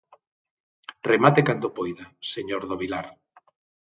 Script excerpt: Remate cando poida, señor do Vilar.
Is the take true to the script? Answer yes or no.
yes